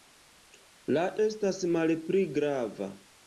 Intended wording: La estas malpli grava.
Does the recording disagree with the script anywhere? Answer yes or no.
no